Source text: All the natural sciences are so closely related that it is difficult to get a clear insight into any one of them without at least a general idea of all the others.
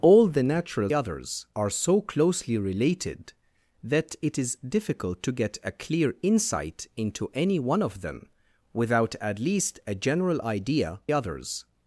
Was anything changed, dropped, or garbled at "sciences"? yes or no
yes